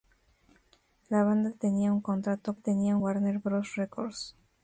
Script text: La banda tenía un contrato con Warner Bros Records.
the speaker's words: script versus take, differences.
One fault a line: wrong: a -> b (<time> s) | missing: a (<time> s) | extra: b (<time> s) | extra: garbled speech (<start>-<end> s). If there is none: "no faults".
wrong: con -> tenía (2.5 s)